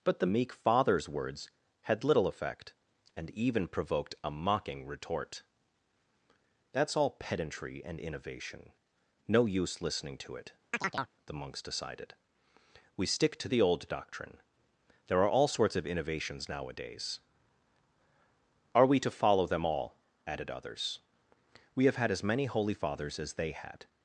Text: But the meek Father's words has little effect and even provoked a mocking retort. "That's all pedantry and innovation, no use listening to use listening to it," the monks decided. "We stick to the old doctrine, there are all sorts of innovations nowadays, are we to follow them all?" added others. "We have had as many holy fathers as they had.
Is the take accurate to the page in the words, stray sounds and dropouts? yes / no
no